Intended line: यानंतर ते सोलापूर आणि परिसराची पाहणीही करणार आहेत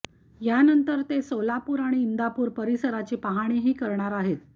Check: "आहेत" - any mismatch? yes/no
no